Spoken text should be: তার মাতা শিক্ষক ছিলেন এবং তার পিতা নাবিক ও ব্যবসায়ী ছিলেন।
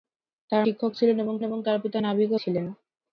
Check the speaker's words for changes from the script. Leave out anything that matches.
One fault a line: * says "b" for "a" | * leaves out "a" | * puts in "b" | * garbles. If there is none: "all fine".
* leaves out "মাতা"
* puts in "এবং"
* leaves out "ব্যবসায়ী"